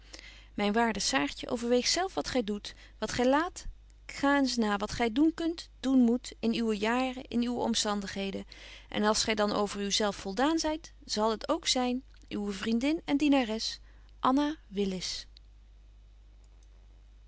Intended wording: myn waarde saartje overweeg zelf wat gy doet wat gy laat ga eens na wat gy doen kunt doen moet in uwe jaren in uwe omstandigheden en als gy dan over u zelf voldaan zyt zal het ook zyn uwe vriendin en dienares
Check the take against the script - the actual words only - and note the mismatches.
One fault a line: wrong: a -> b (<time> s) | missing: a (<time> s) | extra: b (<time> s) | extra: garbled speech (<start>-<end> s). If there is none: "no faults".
no faults